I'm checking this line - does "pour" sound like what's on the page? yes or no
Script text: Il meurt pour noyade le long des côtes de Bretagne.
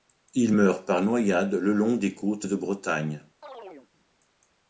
no